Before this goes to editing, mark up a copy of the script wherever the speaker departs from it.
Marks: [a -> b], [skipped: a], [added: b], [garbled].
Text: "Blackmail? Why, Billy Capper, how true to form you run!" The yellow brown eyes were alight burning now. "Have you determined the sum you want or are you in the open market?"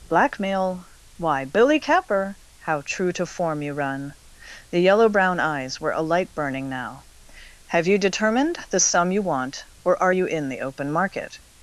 "Blackmail? Why, Billy Capper, how true to form you run!" The yellow brown eyes were alight burning now. "Have you determined the sum you want or are you in the open market?"